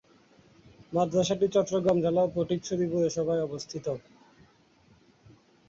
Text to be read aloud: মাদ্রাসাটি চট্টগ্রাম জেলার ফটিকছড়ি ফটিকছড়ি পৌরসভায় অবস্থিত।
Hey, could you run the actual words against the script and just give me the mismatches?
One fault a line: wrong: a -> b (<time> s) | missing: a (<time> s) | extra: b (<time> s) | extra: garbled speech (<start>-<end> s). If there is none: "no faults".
missing: ফটিকছড়ি (2.9 s)